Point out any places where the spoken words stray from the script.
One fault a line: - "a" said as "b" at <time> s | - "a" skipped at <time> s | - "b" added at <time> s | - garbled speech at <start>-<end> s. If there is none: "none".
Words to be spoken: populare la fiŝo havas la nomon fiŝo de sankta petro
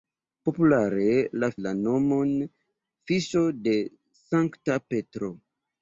- "fiŝo havas" skipped at 1.5 s